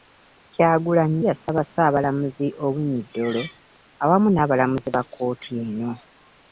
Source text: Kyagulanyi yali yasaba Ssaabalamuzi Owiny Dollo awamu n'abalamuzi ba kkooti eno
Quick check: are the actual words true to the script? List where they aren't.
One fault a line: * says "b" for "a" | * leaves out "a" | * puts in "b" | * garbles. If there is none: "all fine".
* leaves out "yali"